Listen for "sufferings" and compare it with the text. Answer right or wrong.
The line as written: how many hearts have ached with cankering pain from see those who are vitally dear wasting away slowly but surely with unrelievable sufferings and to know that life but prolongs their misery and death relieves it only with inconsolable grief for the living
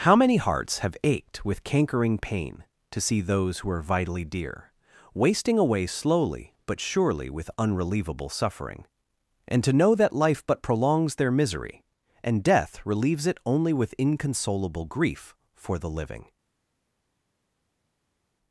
wrong